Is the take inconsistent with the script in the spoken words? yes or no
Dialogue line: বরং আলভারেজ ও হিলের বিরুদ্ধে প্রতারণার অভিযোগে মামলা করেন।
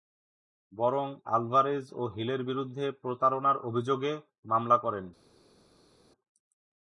no